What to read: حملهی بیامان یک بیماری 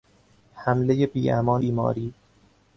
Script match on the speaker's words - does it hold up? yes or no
no